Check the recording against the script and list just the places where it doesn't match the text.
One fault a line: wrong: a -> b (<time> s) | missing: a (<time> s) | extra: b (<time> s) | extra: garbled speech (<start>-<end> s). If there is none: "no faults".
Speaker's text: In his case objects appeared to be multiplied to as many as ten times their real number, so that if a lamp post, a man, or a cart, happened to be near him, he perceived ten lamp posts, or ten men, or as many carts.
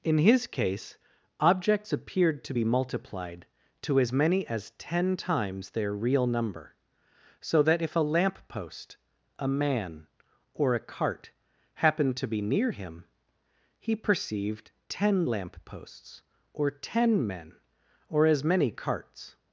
no faults